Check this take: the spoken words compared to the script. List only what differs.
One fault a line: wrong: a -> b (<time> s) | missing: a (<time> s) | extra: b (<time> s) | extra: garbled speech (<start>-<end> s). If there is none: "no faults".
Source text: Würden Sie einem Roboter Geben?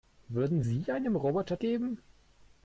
no faults